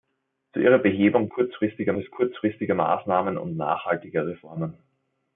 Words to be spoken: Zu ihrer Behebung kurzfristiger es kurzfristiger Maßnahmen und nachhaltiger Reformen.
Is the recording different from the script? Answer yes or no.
no